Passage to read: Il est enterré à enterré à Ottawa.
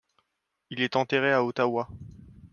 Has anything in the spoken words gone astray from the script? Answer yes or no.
yes